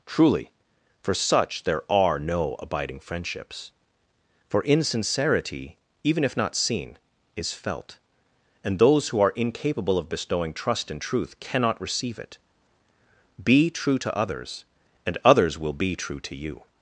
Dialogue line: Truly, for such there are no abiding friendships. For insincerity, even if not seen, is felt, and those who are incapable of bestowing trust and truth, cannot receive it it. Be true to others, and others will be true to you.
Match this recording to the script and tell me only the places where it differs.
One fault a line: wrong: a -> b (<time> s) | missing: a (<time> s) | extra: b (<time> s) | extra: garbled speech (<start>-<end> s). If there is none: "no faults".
missing: it (12.4 s)